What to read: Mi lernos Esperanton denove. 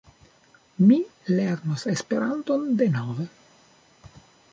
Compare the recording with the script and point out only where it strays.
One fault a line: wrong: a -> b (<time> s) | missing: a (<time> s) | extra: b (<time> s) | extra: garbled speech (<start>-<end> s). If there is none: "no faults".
no faults